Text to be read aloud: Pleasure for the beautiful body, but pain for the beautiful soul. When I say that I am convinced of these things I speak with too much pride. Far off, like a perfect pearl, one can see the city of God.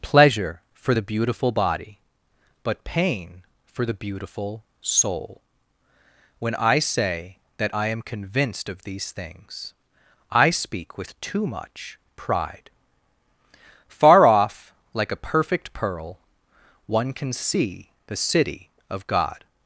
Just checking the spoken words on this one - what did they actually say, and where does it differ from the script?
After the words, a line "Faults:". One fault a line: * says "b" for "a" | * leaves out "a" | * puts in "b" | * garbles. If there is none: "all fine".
Pleasure for the beautiful body, but pain for the beautiful soul. When I say that I am convinced of these things I speak with too much pride. Far off, like a perfect pearl, one can see the city of God.
Faults:
all fine